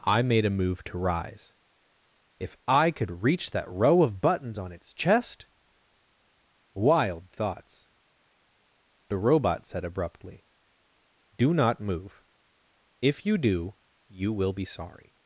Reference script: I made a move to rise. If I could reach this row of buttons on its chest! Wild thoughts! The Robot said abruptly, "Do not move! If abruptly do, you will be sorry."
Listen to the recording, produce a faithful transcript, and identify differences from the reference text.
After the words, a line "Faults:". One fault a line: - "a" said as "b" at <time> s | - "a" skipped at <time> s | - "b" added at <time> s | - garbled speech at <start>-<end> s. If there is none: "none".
I made a move to rise. If I could reach that row of buttons on its chest! Wild thoughts! The Robot said abruptly, "Do not move! If you do, you will be sorry."
Faults:
- "this" said as "that" at 3.5 s
- "abruptly" said as "you" at 13.2 s